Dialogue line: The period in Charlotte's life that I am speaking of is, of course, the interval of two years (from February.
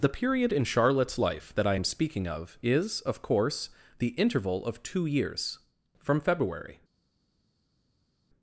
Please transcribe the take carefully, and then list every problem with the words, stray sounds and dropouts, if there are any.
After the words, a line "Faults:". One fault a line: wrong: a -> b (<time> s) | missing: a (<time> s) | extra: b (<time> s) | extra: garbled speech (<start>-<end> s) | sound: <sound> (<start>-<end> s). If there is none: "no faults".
The period in Charlotte's life that I am speaking of is, of course, the interval of two years (from February.
Faults:
no faults